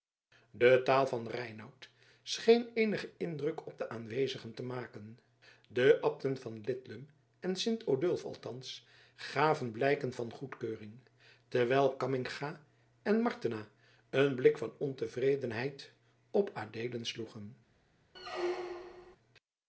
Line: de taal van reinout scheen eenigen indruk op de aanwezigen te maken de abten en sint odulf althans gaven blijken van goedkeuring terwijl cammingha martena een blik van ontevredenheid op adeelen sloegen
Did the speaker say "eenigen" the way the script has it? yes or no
yes